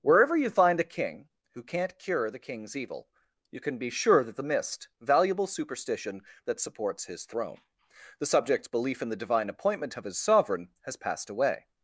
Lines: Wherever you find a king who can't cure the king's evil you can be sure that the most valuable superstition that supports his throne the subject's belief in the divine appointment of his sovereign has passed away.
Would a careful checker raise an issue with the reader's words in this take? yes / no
yes